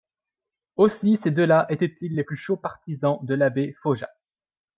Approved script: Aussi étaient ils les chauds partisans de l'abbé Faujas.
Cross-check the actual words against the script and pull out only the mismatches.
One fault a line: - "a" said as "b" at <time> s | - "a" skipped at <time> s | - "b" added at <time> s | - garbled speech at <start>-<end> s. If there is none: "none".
- "ces deux là" added at 1.2 s
- "plus" added at 2.2 s